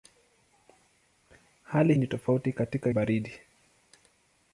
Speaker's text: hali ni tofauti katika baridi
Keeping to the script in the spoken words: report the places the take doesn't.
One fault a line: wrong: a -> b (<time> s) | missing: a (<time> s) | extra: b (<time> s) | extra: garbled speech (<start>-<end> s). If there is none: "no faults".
no faults